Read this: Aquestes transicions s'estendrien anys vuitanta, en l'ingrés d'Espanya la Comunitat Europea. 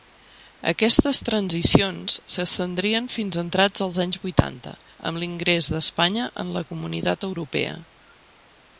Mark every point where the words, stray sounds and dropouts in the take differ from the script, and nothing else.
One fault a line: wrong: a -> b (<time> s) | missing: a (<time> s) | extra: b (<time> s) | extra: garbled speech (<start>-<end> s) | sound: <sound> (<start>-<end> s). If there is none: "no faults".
extra: fins entrats els (3.2 s)
wrong: en -> amb (5.1 s)
extra: en (6.5 s)